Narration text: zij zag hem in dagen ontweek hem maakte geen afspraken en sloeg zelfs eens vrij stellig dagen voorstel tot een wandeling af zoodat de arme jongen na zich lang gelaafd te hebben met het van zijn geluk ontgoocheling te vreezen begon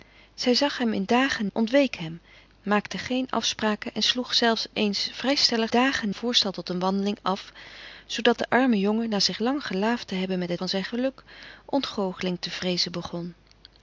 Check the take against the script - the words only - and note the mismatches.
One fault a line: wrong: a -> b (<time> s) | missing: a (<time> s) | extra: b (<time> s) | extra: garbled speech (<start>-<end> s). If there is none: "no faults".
no faults